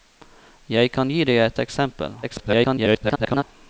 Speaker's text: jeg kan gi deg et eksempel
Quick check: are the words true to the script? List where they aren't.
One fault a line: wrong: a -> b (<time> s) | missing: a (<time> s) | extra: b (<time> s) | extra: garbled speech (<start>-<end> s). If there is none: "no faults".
extra: garbled speech (2.2-3.4 s)